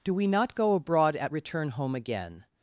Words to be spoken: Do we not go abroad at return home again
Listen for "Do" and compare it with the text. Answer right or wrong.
right